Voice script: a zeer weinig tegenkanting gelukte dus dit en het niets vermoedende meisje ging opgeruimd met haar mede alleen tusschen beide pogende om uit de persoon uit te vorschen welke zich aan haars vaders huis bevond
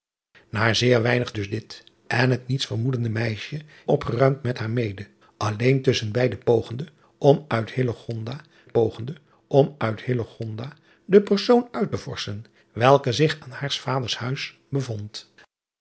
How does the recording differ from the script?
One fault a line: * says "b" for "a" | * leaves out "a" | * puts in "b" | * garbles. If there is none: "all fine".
* leaves out "tegenkanting gelukte"
* leaves out "ging"
* puts in "pogende om uit"